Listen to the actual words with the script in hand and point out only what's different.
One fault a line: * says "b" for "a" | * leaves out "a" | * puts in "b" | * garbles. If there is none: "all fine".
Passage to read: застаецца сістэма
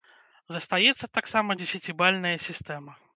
* puts in "таксама дзесяцібальная"